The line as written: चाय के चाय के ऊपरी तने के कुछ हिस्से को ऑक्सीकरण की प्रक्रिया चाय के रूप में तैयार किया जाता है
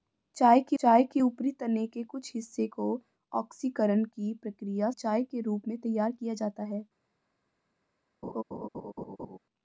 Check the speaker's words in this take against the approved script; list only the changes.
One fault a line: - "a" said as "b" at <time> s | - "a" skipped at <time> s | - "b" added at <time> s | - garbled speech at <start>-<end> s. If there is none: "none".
none